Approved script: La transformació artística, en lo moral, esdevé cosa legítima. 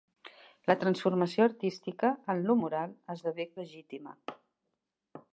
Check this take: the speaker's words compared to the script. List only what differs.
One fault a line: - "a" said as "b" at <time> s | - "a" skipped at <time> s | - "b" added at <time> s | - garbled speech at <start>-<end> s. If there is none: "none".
- "cosa" skipped at 3.5 s